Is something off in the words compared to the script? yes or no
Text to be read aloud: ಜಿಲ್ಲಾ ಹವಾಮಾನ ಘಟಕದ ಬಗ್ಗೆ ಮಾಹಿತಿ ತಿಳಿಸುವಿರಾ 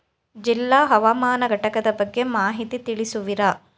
no